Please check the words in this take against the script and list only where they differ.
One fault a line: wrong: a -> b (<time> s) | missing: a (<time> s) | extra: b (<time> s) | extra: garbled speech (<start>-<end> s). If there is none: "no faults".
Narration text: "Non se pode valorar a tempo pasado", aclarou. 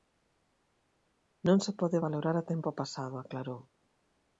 no faults